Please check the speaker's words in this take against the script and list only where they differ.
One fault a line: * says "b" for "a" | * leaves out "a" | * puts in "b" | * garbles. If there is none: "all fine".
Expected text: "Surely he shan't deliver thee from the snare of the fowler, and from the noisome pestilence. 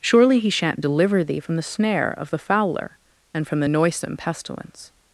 all fine